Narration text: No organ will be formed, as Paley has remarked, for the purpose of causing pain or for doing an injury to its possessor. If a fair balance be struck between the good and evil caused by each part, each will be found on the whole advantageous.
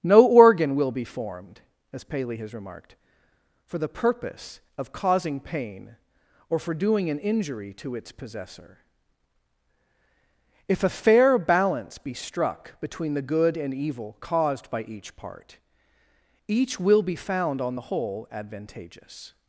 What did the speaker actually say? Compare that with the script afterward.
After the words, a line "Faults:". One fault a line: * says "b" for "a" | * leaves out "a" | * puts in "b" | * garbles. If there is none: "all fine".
No organ will be formed, as Paley has remarked, for the purpose of causing pain or for doing an injury to its possessor. If a fair balance be struck between the good and evil caused by each part, each will be found on the whole advantageous.
Faults:
all fine